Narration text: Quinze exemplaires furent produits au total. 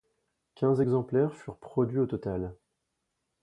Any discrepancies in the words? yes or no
no